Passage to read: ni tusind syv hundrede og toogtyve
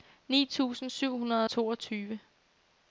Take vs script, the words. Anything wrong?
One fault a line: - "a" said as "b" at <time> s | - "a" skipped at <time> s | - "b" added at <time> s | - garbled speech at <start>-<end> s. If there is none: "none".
none